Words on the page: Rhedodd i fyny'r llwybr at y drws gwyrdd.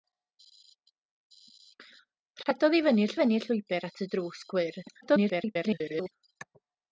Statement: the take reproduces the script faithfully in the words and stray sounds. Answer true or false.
false